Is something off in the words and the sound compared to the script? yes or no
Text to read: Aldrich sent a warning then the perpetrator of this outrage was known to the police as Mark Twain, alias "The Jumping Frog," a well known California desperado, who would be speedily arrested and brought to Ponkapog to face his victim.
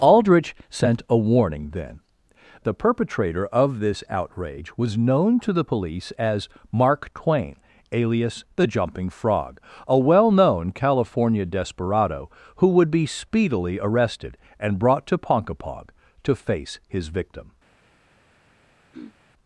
yes